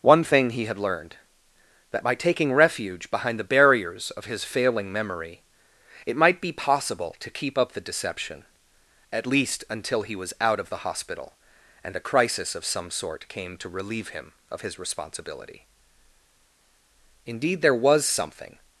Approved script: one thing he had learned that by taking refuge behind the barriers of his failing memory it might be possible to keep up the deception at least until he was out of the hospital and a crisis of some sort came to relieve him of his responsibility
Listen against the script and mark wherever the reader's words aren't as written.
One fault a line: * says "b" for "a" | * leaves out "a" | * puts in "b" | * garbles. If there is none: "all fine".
* puts in "indeed there was something"